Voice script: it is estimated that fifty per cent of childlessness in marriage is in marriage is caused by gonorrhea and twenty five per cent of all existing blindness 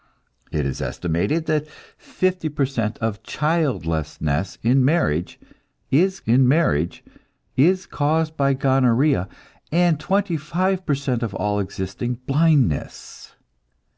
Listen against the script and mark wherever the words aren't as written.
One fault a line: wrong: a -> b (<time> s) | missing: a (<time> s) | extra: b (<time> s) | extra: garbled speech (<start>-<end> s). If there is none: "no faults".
no faults